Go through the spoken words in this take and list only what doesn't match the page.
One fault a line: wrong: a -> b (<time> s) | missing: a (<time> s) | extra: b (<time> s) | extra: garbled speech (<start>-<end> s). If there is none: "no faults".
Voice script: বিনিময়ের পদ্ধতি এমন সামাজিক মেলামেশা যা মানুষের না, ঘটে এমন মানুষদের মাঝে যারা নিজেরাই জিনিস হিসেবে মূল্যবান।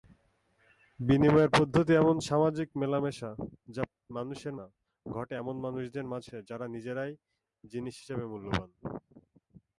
no faults